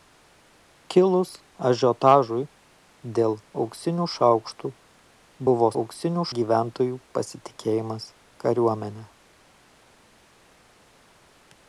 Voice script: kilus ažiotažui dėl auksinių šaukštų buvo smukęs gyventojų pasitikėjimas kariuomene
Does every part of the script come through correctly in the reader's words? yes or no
no